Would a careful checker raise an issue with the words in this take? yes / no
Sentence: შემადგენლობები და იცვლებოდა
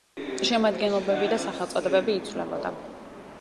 yes